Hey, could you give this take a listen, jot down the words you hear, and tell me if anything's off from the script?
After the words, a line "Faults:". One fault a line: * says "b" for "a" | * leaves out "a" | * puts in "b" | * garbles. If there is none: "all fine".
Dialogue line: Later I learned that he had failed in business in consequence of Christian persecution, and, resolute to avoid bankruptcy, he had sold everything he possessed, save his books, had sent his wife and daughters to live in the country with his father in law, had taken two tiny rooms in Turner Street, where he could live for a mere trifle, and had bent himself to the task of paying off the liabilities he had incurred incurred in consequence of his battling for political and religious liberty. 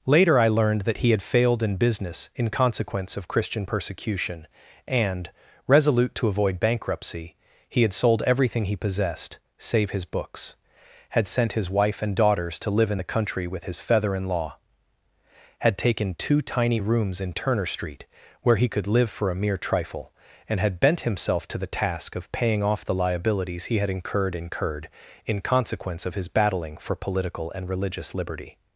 Later I learned that he had failed in business in consequence of Christian persecution, and, resolute to avoid bankruptcy, he had sold everything he possessed, save his books, had sent his wife and daughters to live in the country with his feather in law, had taken two tiny rooms in Turner Street, where he could live for a mere trifle, and had bent himself to the task of paying off the liabilities he had incurred incurred in consequence of his battling for political and religious liberty.
Faults:
* says "feather" for "father"